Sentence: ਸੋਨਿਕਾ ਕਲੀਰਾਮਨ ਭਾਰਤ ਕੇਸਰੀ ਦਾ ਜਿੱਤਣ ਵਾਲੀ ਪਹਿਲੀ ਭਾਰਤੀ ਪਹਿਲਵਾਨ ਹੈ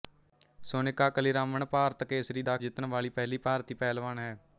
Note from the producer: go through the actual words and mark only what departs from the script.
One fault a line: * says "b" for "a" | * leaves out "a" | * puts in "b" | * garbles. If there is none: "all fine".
all fine